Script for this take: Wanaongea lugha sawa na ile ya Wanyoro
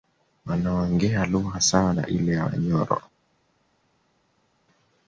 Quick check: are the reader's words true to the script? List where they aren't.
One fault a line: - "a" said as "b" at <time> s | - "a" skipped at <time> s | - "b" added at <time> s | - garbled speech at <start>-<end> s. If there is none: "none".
none